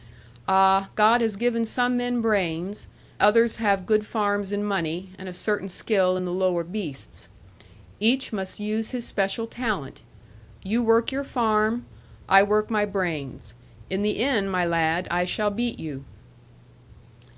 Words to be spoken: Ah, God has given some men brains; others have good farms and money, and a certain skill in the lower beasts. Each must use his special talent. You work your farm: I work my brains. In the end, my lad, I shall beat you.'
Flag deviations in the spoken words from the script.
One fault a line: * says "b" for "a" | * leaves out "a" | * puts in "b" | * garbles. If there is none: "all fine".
all fine